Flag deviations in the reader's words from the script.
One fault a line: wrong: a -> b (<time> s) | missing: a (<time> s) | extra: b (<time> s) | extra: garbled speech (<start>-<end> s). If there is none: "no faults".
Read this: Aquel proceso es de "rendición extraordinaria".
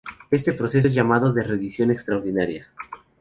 wrong: Aquel -> Este (0.3 s)
extra: llamado (0.9 s)